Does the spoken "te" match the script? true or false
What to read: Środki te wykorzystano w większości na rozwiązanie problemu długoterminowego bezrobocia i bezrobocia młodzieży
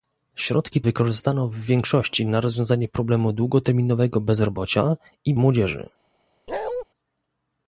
false